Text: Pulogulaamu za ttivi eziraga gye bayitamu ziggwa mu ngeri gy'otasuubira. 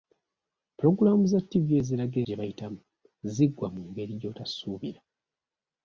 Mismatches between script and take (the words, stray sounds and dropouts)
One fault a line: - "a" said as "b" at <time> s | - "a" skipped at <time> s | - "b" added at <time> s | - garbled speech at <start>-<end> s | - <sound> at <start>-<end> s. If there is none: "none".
none